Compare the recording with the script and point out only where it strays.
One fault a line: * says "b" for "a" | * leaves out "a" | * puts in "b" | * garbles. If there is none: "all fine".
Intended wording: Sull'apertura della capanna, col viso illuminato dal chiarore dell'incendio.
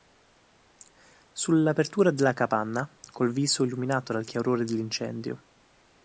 all fine